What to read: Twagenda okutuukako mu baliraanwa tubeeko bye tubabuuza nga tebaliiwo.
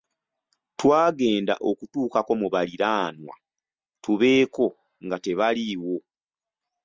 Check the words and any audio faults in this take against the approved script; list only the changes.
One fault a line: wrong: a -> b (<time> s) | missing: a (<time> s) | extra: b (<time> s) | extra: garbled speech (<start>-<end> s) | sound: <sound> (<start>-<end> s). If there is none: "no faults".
missing: bye tubabuuza (4.7 s)